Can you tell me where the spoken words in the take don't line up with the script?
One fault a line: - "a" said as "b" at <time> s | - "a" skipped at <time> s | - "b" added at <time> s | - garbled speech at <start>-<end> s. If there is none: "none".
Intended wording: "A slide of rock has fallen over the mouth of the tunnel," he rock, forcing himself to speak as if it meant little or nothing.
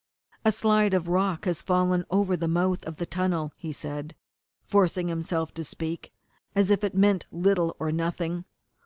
- "rock" said as "said" at 3.7 s